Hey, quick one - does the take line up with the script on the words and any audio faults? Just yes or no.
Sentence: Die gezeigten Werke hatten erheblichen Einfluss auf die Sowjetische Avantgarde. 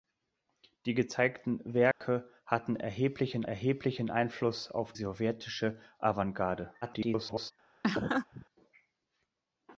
no